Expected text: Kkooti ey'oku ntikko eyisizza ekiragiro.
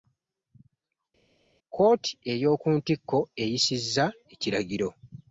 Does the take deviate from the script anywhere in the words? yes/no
no